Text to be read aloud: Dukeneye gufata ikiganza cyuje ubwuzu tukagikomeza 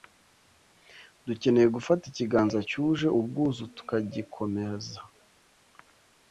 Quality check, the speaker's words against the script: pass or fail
pass